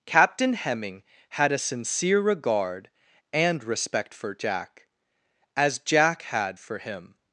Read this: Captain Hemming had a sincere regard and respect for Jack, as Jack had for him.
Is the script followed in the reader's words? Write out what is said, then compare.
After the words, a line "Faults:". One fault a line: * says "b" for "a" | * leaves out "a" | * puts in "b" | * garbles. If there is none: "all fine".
Captain Hemming had a sincere regard and respect for Jack, as Jack had for him.
Faults:
all fine